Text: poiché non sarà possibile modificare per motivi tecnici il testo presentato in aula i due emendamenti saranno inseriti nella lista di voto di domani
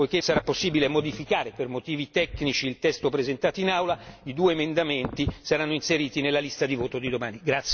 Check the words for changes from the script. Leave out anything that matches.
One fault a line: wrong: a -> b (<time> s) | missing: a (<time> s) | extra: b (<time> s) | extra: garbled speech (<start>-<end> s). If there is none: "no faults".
missing: non (0.2 s)